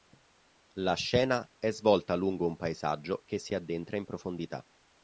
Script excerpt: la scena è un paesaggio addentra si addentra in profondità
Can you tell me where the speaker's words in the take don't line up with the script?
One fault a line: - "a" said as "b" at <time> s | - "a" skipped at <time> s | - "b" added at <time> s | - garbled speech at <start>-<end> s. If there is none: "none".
- "svolta lungo" added at 1.7 s
- "addentra" said as "che" at 3.2 s